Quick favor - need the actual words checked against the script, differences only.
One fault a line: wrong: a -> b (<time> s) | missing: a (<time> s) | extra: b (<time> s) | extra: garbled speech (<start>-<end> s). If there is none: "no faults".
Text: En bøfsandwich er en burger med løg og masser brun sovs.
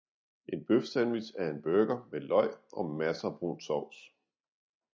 no faults